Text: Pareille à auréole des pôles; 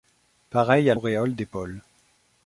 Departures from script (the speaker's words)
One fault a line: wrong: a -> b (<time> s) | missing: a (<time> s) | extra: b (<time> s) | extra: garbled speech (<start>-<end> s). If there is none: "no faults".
no faults